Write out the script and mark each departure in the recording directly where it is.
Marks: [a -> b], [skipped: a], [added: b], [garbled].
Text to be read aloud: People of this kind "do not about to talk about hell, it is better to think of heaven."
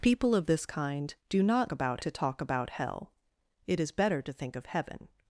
People of this kind "do not about to talk about hell, it is better to think of heaven."